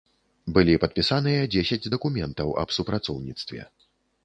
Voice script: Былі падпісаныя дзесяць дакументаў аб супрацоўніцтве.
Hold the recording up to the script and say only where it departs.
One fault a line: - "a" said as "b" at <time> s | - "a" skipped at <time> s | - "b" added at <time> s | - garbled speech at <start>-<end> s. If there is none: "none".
none